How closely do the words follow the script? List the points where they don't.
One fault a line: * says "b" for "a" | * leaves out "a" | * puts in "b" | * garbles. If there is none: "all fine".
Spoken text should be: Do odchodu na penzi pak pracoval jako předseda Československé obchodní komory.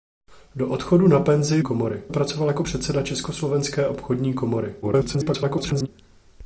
* says "komory" for "pak"
* garbles